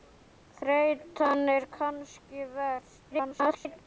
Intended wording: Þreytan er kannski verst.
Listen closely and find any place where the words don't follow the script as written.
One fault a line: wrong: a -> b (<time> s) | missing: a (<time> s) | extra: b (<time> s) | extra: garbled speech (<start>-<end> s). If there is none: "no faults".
extra: garbled speech (3.1-3.8 s)